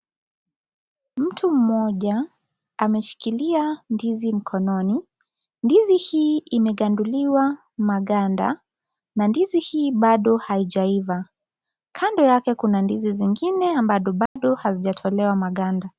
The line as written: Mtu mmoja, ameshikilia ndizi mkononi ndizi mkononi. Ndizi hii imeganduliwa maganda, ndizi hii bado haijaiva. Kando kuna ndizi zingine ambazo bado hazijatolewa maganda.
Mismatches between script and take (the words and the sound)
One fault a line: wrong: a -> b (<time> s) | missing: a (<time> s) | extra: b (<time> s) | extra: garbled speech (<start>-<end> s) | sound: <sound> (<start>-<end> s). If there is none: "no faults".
missing: mkononi Ndizi (6.0 s)
extra: na (9.2 s)
extra: yake (12.2 s)
sound: dropout (14.3-14.4 s)